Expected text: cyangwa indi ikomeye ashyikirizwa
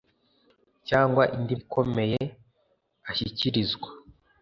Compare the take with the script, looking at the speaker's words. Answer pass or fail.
pass